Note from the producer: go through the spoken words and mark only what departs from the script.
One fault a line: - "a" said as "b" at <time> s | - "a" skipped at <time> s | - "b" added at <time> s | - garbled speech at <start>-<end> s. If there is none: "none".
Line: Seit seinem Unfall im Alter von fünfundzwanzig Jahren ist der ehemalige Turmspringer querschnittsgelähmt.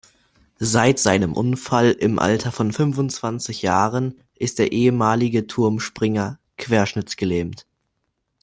none